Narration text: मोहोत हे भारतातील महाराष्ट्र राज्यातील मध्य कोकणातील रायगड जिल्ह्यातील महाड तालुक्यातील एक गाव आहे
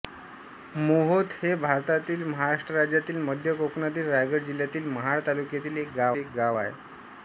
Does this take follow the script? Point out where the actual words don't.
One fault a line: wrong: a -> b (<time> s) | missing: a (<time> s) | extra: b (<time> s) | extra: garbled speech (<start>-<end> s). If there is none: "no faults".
extra: एक गाव (6.2 s)